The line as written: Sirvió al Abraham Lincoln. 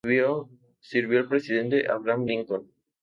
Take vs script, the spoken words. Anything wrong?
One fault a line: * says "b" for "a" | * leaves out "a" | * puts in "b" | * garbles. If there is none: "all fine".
* puts in "presidente"